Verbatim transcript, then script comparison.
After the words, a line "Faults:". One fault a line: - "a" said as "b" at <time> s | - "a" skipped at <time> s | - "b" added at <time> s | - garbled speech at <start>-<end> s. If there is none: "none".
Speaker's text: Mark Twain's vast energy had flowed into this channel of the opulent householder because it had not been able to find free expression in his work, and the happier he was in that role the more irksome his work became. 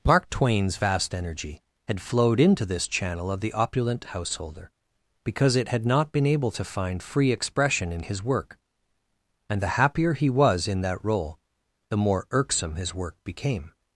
Mark Twain's vast energy had flowed into this channel of the opulent householder because it had not been able to find free expression in his work, and the happier he was in that role the more irksome his work became.
Faults:
none